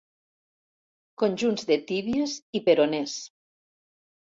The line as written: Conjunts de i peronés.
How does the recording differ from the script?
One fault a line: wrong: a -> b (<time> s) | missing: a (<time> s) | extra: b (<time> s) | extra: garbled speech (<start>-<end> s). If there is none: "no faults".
extra: tíbies (1.9 s)